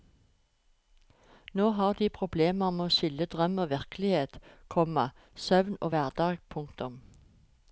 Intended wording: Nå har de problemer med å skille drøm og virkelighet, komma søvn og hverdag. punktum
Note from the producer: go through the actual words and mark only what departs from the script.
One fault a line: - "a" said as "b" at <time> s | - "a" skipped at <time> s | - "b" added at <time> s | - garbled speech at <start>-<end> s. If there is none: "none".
none